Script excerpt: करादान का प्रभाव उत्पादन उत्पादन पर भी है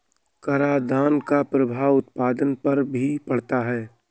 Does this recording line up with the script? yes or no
no